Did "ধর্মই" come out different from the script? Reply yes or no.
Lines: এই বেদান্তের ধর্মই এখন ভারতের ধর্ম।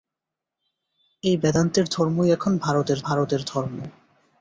no